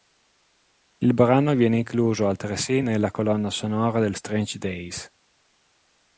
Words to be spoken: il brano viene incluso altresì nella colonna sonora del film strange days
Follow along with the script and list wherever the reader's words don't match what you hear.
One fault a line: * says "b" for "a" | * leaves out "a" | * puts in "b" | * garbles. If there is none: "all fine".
* leaves out "film"